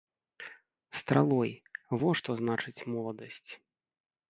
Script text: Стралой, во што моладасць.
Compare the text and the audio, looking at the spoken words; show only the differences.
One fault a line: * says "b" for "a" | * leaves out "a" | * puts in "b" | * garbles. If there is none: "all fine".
* puts in "значыць"